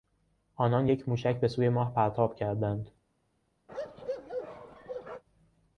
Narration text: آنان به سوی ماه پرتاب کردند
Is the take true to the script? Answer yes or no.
no